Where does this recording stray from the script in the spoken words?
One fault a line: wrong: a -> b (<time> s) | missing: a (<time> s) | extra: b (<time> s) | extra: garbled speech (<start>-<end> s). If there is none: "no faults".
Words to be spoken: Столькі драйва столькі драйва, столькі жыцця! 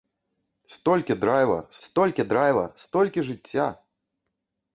no faults